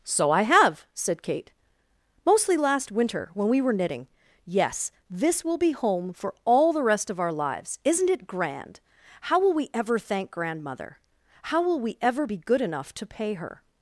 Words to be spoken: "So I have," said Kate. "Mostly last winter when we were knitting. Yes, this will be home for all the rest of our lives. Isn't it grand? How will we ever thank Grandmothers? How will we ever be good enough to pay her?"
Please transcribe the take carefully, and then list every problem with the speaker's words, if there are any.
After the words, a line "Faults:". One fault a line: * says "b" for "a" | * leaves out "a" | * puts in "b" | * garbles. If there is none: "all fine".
"So I have," said Kate. "Mostly last winter when we were knitting. Yes, this will be home for all the rest of our lives. Isn't it grand? How will we ever thank Grandmother? How will we ever be good enough to pay her?"
Faults:
* says "Grandmother" for "Grandmothers"